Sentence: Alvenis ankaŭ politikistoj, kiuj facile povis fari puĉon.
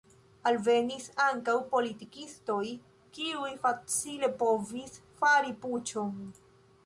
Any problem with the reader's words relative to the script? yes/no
no